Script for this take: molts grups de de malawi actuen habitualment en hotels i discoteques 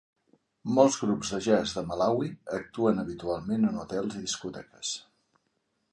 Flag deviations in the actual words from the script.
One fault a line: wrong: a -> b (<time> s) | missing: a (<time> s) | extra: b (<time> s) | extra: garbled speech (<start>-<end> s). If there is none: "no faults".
extra: jazz (1.5 s)